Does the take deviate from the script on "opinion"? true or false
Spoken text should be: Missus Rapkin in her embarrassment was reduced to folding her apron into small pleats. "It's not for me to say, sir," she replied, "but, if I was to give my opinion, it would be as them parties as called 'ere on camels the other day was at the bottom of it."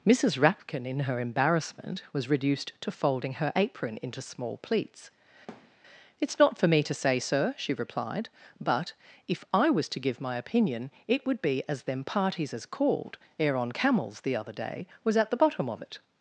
false